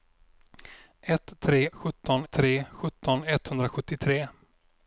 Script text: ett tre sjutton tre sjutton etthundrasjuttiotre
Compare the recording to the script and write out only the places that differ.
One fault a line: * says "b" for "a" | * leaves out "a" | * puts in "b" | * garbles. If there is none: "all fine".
all fine